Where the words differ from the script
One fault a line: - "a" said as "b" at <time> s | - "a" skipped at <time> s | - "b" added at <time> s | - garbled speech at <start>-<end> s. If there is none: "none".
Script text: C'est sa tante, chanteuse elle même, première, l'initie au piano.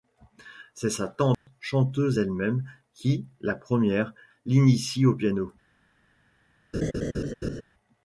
- "qui la" added at 2.9 s